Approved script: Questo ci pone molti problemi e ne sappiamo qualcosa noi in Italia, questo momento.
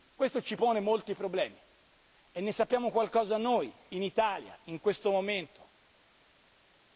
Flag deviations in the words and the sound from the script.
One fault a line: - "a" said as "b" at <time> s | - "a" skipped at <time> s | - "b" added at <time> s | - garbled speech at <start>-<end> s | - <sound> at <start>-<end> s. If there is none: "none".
- "in" added at 4.6 s